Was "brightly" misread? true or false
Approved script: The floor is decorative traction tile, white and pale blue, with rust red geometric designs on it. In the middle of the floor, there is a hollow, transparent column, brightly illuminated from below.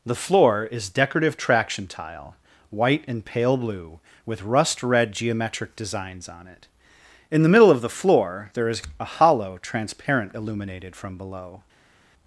true